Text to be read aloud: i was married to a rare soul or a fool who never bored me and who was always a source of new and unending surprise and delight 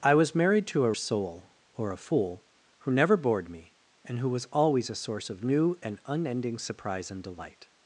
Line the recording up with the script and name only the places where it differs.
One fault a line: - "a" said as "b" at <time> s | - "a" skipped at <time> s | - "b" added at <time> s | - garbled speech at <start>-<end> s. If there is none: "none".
- "rare" skipped at 0.9 s